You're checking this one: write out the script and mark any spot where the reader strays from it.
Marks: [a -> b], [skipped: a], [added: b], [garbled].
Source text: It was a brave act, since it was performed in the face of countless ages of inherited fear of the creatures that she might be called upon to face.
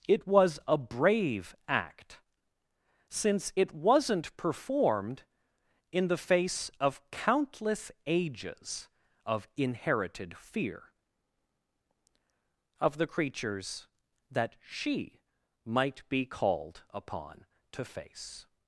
It was a brave act, since it [was -> wasn't] performed in the face of countless ages of inherited fear of the creatures that she might be called upon to face.